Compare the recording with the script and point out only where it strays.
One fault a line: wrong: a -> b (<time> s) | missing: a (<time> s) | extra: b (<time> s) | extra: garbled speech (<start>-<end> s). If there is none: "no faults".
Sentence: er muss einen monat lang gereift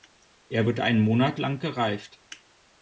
wrong: muss -> wird (0.7 s)